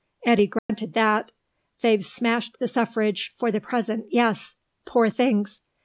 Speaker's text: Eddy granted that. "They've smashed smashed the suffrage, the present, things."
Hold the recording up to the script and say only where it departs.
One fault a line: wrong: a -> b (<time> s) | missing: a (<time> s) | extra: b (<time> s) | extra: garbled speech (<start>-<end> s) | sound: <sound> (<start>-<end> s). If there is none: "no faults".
sound: dropout (0.6-0.7 s)
missing: smashed (2.5 s)
extra: for (3.4 s)
extra: yes Poor (4.1 s)